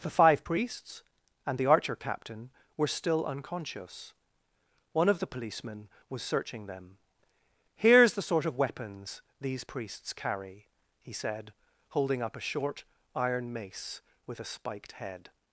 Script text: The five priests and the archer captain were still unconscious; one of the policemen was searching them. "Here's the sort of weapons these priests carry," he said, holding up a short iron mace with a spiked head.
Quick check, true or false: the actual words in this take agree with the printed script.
true